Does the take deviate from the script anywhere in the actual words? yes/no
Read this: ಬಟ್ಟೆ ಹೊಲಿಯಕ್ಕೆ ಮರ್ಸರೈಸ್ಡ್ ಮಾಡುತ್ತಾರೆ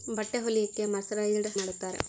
no